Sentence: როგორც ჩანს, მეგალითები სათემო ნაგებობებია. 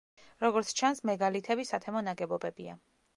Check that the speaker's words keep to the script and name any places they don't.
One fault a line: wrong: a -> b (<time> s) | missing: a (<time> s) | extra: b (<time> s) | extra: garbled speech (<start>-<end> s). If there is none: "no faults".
no faults